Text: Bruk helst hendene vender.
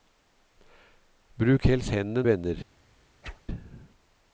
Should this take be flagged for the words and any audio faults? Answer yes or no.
yes